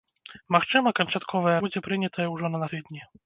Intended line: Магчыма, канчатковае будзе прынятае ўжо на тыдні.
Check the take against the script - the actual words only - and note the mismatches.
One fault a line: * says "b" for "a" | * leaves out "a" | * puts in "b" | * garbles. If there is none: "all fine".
all fine